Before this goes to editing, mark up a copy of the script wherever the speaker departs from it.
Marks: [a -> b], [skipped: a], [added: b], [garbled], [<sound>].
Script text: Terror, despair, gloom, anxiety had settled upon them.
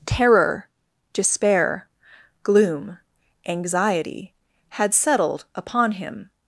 Terror, despair, gloom, anxiety had settled upon [them. -> him]